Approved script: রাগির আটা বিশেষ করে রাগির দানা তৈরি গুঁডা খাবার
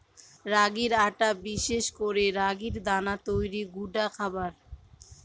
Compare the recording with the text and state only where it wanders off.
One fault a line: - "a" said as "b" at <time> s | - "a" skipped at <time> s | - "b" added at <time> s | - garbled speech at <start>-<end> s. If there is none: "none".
none